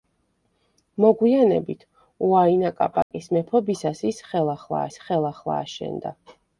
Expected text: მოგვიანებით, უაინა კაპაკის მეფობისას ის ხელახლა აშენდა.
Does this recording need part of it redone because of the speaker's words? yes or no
yes